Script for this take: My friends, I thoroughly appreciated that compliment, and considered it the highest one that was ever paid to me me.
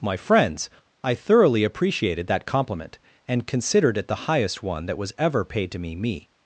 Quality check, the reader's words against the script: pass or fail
pass